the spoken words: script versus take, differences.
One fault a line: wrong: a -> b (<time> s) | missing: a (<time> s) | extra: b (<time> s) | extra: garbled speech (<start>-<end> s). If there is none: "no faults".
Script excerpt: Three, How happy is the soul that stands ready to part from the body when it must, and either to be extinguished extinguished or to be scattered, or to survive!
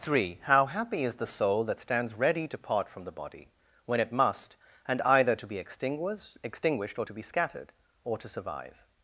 no faults